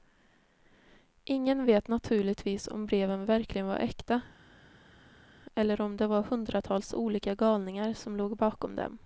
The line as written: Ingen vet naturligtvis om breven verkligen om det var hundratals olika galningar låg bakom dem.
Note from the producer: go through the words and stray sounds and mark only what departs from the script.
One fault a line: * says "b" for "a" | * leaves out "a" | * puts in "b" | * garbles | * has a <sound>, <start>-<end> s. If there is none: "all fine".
* puts in "var äkta eller"
* puts in "som"